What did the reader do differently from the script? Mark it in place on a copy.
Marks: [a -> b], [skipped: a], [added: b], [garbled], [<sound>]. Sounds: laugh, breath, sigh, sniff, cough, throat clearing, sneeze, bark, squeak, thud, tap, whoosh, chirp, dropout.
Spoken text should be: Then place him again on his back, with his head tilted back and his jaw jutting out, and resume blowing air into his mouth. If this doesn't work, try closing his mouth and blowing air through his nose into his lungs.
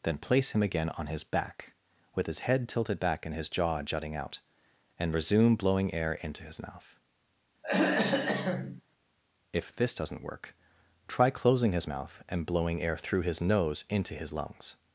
Then place him again on his back, with his head tilted back and his jaw jutting out, and resume blowing air into his mouth. [throat clearing] If this doesn't work, try closing his mouth and blowing air through his nose into his lungs.